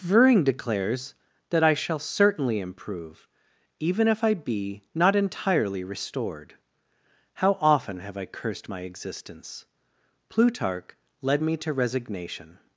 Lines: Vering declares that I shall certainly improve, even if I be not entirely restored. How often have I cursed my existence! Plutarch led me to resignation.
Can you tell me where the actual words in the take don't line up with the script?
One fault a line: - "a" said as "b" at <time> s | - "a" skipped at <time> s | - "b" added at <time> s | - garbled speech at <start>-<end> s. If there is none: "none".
none